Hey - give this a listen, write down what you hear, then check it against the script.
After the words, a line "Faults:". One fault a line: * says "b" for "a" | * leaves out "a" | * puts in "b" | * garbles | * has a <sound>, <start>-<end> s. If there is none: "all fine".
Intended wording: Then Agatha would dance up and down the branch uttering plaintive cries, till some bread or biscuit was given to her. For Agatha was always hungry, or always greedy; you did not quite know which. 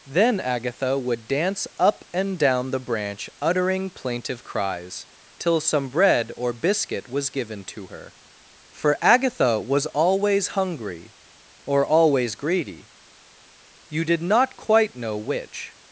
Then Agatha would dance up and down the branch uttering plaintive cries, till some bread or biscuit was given to her. For Agatha was always hungry, or always greedy; you did not quite know which.
Faults:
all fine